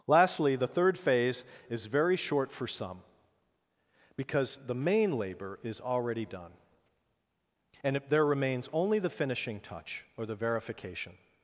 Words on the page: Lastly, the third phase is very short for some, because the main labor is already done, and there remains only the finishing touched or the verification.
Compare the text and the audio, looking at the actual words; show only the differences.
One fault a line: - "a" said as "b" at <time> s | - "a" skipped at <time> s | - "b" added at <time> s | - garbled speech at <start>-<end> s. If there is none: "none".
- "touched" said as "touch" at 9.6 s